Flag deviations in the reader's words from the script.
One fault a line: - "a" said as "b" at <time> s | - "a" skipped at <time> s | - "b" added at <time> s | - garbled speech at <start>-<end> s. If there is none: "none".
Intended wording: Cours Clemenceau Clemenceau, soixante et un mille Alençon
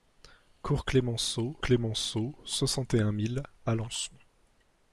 none